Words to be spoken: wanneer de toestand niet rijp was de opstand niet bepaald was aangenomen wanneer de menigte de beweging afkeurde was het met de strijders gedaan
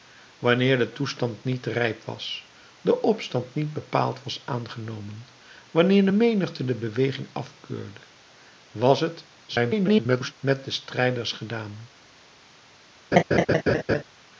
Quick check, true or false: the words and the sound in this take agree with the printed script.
false